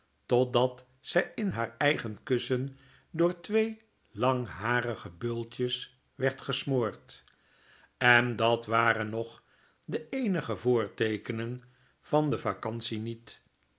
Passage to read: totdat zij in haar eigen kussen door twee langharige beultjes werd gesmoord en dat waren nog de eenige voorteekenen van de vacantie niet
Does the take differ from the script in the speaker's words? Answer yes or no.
no